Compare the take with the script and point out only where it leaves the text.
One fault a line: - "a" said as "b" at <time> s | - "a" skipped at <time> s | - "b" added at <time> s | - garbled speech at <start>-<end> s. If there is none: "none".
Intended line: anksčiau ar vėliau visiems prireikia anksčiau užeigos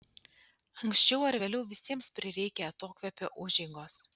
- "anksčiau" said as "atokvėpio" at 2.7 s